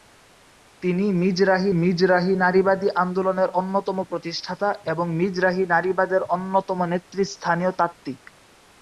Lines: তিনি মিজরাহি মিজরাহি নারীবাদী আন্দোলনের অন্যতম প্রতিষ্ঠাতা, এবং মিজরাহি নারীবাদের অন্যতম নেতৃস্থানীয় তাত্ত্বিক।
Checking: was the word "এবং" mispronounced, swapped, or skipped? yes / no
no